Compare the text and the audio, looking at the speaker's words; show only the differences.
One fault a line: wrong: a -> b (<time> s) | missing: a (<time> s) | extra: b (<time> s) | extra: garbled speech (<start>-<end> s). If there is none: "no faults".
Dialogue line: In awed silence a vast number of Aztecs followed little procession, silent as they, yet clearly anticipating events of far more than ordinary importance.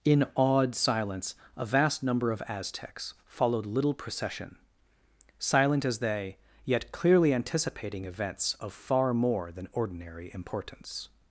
no faults